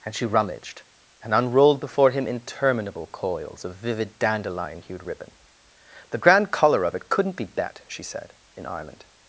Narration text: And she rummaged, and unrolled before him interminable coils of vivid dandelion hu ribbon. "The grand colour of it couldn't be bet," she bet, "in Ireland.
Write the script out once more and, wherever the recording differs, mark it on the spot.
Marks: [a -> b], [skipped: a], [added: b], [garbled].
And she rummaged, and unrolled before him interminable coils of vivid dandelion [hu -> hued] ribbon. "The grand colour of it couldn't be bet," she [bet, -> said] "in Ireland.